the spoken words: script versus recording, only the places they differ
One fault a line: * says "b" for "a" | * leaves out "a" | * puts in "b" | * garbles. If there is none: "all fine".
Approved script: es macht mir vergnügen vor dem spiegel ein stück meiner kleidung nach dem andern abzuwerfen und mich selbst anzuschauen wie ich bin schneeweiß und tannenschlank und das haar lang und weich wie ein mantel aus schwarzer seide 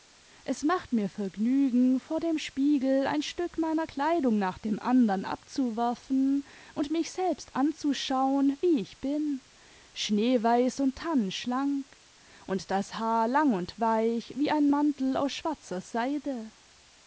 all fine